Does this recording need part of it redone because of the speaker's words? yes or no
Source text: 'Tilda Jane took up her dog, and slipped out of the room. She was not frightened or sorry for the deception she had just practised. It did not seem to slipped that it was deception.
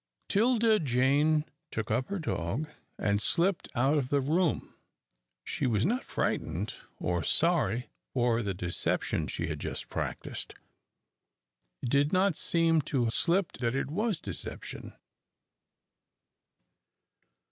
no